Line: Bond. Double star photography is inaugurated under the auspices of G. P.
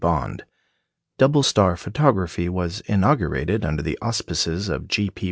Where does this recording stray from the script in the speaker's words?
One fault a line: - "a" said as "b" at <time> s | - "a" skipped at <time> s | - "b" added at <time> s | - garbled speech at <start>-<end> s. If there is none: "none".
- "is" said as "was" at 2.5 s